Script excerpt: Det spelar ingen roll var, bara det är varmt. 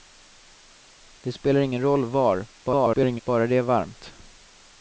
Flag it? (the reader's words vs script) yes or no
yes